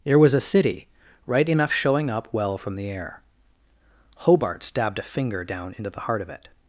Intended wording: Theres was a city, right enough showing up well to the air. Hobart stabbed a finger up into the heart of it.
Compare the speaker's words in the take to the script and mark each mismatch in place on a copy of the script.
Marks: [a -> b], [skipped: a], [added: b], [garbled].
[Theres -> There] was a city, right enough showing up well [to -> from] the air. Hobart stabbed a finger [up -> down] into the heart of it.